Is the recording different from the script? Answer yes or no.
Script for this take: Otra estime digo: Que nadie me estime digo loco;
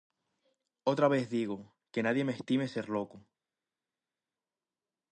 yes